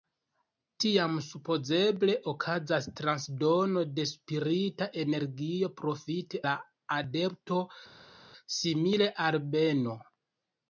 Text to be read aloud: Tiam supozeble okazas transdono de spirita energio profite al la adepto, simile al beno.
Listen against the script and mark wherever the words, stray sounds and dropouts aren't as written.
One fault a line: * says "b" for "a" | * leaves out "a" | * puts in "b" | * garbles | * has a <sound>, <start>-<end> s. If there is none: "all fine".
* leaves out "al"